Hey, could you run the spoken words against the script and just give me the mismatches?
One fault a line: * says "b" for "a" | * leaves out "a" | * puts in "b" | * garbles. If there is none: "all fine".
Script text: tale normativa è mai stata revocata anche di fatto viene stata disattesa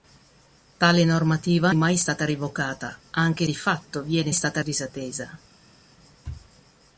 all fine